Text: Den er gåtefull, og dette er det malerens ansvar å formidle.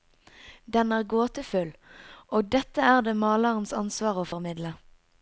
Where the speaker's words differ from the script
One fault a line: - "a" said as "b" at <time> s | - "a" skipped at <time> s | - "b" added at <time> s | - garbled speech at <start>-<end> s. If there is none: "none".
none